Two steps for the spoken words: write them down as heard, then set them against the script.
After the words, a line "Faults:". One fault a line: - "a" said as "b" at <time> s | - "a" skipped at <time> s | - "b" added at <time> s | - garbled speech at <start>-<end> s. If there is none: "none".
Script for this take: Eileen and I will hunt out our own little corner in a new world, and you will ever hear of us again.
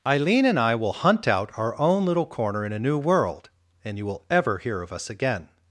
Eileen and I will hunt out our own little corner in a new world, and you will ever hear of us again.
Faults:
none